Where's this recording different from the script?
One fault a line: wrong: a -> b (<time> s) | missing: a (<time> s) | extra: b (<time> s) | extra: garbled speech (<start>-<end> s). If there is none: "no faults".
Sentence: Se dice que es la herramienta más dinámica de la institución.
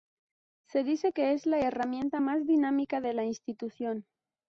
no faults